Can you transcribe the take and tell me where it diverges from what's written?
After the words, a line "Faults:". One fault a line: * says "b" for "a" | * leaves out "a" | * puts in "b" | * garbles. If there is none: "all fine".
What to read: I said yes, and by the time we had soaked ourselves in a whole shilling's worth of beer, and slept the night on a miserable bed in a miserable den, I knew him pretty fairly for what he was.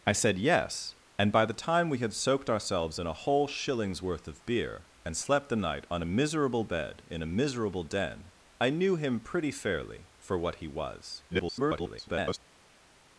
I said yes, and by the time we had soaked ourselves in a whole shilling's worth of beer, and slept the night on a miserable bed in a miserable den, I knew him pretty fairly for what he was. [garbled]
Faults:
* garbles